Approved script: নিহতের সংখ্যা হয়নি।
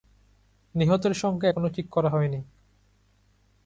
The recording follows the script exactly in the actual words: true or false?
false